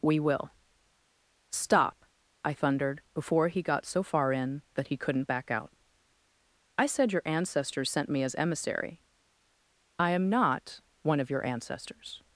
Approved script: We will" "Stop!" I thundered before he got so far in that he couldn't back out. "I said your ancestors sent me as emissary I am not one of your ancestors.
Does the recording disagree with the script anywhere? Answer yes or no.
no